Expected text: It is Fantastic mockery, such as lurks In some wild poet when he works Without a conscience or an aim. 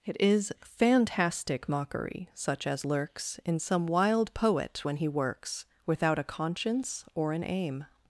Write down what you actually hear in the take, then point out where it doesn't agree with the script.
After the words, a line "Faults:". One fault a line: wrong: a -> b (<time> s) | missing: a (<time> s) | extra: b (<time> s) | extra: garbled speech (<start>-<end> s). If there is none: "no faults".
It is Fantastic mockery, such as lurks In some wild poet when he works Without a conscience or an aim.
Faults:
no faults